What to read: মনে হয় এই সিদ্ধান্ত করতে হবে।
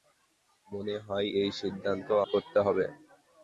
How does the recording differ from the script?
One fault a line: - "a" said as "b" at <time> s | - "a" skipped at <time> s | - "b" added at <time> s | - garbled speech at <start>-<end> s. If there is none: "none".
none